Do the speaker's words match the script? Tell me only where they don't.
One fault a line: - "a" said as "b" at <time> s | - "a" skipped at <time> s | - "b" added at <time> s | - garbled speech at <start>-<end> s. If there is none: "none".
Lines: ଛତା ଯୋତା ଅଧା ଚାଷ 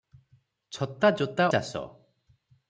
- "ଅଧା" skipped at 1.5 s